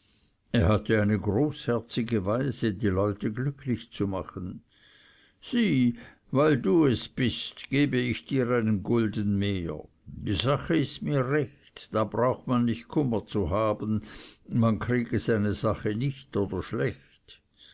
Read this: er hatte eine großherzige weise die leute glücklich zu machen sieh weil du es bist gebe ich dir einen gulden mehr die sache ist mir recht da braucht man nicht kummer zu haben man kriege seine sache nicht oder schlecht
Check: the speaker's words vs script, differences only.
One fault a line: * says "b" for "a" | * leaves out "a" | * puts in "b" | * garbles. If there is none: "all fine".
all fine